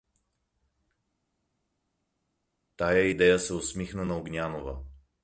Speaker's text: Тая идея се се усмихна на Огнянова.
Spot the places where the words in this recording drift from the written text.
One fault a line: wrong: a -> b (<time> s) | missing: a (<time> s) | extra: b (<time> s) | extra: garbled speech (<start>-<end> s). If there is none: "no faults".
missing: се (3.5 s)